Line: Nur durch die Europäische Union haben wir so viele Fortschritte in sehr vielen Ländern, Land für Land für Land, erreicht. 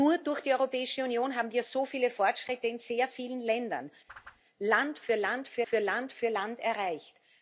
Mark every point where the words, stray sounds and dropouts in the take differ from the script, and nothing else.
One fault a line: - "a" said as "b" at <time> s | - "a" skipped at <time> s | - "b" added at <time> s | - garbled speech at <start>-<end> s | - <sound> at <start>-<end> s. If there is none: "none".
- whoosh at 4.1-4.4 s
- "für Land für" added at 5.6 s